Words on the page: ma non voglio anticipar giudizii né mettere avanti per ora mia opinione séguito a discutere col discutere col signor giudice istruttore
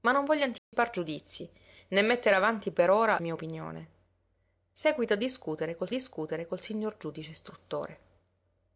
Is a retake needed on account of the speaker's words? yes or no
no